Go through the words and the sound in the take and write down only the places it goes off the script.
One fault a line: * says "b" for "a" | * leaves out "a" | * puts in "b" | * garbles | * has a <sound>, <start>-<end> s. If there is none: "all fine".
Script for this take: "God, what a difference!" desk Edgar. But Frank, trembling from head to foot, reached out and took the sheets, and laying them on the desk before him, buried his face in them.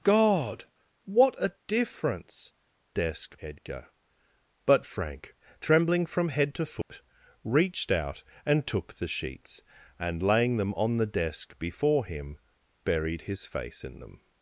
* has a dropout, 6.8-6.9 s